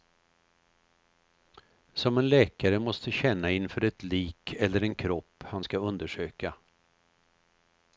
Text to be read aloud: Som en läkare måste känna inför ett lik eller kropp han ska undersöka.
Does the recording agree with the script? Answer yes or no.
no